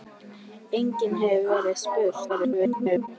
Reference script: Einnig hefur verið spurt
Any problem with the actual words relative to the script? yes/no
yes